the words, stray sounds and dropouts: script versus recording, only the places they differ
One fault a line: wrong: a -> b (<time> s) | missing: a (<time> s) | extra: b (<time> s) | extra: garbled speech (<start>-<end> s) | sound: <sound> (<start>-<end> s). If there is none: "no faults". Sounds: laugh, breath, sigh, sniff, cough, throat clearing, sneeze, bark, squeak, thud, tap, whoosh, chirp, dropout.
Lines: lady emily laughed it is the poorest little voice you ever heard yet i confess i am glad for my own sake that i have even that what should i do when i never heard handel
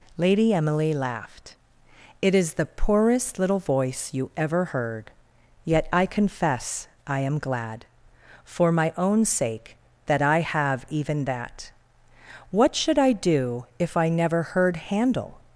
wrong: when -> if (13.8 s)